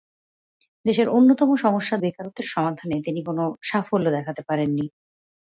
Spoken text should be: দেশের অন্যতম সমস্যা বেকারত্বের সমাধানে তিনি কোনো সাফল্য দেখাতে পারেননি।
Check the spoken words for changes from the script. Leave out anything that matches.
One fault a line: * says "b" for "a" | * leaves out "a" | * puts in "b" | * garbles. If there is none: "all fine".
all fine